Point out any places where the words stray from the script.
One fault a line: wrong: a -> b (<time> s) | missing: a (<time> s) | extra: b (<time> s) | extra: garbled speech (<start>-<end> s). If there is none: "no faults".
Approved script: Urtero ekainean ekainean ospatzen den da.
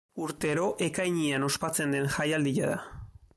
missing: ekainean (1.4 s)
extra: jaialdia (2.2 s)